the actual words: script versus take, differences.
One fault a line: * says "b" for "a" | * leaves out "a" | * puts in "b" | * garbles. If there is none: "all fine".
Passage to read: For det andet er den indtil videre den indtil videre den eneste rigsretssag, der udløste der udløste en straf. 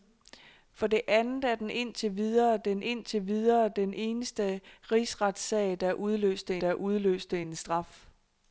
all fine